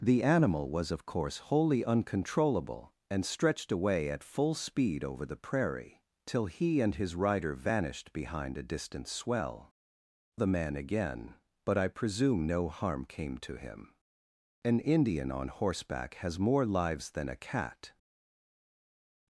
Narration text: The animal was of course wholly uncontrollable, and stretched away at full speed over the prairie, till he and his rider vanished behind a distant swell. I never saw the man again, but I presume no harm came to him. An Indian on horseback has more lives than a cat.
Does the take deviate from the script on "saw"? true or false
true